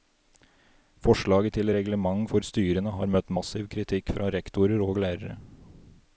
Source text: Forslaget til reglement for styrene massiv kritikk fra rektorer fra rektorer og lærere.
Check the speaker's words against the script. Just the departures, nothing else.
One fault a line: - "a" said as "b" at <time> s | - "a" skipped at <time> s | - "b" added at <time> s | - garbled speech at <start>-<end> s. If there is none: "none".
- "har møtt" added at 3.0 s
- "fra rektorer" skipped at 4.8 s